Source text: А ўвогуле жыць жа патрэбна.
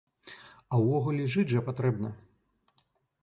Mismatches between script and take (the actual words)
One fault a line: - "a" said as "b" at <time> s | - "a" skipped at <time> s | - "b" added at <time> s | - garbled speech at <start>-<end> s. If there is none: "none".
none